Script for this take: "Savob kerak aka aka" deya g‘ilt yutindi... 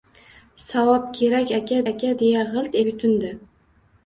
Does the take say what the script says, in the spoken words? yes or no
yes